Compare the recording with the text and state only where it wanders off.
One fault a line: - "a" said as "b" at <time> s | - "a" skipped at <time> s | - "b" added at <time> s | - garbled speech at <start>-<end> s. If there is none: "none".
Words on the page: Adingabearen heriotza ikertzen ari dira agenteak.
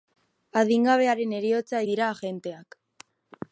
- "ikertzen ari" skipped at 1.8 s